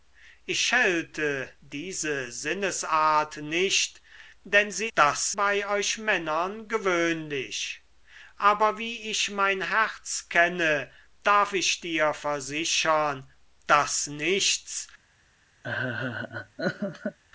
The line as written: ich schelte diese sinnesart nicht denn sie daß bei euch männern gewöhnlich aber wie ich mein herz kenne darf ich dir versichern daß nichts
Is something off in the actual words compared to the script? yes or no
no